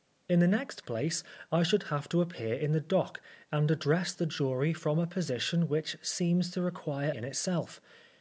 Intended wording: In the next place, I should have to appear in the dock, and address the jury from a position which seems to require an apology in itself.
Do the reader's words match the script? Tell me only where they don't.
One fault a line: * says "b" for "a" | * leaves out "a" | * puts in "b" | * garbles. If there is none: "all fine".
* leaves out "an apology"